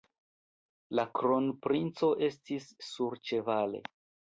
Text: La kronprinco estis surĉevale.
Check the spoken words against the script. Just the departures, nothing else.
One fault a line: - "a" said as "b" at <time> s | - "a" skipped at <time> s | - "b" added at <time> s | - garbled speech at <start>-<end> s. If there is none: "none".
none